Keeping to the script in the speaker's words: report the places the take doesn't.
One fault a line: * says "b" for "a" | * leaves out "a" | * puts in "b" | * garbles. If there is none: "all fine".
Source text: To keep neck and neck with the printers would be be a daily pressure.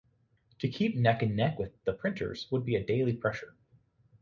* leaves out "be"